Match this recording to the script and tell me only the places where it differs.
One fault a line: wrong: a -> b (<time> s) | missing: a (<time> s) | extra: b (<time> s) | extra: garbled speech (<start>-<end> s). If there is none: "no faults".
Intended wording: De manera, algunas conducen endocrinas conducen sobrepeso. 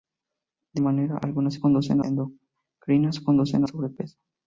no faults